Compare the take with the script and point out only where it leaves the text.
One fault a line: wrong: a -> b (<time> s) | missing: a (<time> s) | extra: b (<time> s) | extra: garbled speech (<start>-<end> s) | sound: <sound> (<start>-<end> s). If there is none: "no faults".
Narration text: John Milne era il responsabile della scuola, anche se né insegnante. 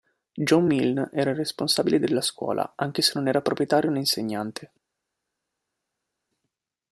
extra: non era proprietario (3.2 s)